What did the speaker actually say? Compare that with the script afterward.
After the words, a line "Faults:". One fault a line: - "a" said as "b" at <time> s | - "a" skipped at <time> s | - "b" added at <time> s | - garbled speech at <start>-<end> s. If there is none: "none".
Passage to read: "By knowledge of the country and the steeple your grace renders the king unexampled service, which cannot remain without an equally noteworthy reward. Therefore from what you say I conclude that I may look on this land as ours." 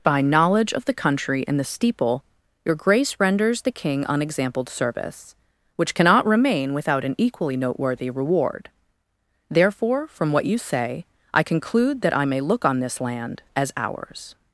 "By knowledge of the country and the steeple your grace renders the king unexampled service, which cannot remain without an equally noteworthy reward. Therefore from what you say I conclude that I may look on this land as ours."
Faults:
none